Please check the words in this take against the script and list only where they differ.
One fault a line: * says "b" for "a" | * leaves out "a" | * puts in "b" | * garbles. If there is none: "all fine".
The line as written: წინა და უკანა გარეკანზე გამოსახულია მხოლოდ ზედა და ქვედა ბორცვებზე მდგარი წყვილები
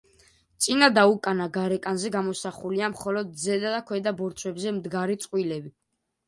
all fine